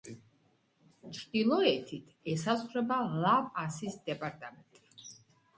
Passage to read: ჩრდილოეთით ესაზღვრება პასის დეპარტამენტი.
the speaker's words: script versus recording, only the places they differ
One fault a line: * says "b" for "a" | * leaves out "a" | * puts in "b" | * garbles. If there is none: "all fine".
* puts in "ლა"